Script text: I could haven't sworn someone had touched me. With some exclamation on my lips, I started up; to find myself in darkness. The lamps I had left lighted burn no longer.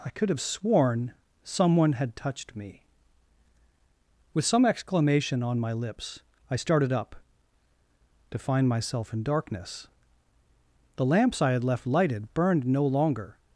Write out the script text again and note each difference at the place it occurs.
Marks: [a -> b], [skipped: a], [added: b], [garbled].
I could [haven't -> have] sworn someone had touched me. With some exclamation on my lips, I started up; to find myself in darkness. The lamps I had left lighted [burn -> burned] no longer.